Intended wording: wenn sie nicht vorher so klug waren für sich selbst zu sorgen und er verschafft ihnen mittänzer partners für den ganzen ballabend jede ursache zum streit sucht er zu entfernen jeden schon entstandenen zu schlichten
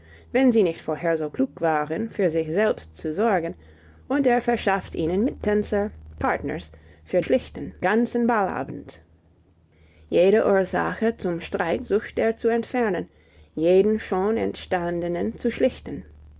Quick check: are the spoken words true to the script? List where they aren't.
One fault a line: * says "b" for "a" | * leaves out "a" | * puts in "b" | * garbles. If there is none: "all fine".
* says "schlichten" for "den"